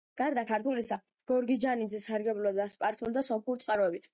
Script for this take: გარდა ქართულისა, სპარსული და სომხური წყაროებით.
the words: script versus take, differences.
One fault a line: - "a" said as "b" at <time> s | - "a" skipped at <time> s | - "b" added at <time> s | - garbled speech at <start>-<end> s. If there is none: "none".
- "გორგიჯანიძე სარგებლობდა" added at 1.3 s